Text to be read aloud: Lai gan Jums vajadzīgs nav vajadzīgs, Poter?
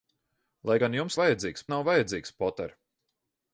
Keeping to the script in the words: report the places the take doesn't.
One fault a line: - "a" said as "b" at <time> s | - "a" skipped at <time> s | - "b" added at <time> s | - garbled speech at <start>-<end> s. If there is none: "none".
none